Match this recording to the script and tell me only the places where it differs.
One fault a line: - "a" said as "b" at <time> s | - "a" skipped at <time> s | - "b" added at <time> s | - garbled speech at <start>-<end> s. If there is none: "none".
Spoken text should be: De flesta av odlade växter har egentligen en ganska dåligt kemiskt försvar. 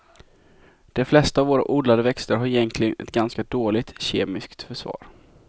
- "våra" added at 1.5 s
- "en" said as "ett" at 3.0 s